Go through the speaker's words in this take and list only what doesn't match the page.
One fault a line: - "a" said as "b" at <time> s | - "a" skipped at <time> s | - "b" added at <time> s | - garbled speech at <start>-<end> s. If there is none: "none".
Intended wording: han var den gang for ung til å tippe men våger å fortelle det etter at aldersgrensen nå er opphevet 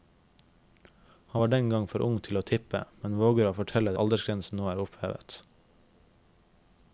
- "det etter at" skipped at 3.9 s